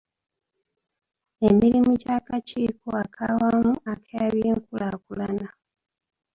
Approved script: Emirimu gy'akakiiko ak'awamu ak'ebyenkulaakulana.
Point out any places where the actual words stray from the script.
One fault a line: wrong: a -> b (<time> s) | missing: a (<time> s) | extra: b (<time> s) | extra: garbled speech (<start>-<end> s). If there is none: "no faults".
no faults